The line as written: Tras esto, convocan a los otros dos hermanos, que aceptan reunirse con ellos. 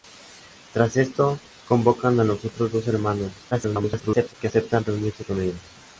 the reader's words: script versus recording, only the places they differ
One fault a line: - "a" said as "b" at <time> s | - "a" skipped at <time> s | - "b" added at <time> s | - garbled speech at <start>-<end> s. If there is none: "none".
- garbled speech at 3.5-4.3 s